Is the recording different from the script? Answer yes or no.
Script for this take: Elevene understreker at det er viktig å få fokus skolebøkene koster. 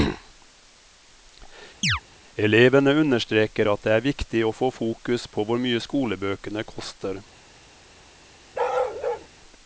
yes